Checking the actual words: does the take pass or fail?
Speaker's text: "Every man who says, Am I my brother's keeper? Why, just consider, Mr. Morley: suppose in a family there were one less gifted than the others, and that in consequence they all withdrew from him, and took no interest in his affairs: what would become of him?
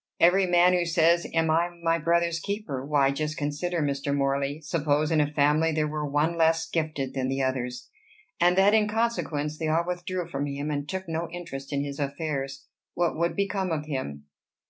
pass